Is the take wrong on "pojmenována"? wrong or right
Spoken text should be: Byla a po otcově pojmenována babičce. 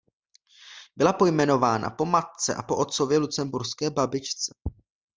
wrong